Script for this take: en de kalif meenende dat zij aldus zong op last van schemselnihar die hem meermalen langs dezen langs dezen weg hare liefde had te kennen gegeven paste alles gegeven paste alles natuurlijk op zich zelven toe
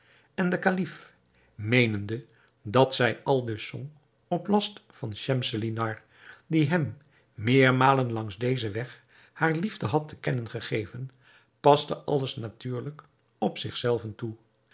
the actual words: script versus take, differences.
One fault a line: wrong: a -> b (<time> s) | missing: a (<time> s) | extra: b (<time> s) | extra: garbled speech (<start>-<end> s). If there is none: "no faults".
missing: langs dezen (8.7 s)
missing: gegeven paste alles (12.4 s)